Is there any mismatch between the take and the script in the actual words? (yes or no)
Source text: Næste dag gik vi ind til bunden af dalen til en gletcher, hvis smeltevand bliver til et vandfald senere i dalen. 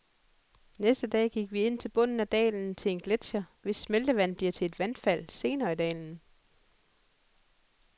no